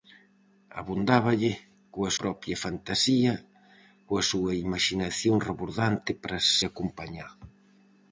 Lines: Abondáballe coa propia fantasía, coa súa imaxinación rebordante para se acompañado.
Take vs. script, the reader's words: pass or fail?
pass